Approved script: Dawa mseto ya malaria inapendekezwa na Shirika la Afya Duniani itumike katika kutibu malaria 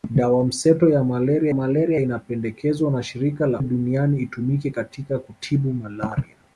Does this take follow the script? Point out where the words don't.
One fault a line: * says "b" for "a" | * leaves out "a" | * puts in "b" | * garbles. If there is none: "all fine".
* puts in "malaria"
* leaves out "Afya"